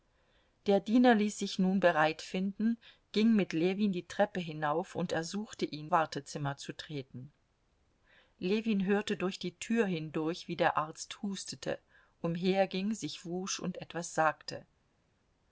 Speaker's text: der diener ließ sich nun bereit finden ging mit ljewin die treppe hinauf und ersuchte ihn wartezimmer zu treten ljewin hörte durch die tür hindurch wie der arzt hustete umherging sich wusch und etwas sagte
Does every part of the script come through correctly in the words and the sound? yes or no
yes